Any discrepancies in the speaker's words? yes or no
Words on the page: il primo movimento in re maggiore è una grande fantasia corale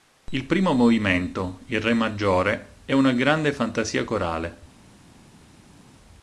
no